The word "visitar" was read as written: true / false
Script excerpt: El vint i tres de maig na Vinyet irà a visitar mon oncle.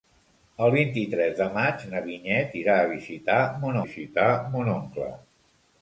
true